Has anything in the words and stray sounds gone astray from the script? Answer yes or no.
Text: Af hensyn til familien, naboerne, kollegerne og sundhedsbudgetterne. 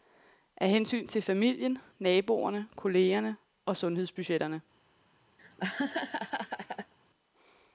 yes